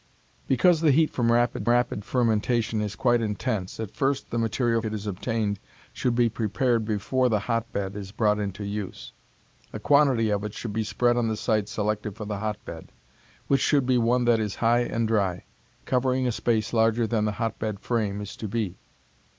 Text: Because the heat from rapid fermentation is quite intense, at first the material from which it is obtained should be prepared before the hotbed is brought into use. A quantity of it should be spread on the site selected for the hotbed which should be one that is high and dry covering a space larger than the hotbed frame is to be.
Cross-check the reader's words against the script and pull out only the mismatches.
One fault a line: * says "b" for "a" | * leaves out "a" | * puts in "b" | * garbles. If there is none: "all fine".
* puts in "rapid"
* leaves out "from which"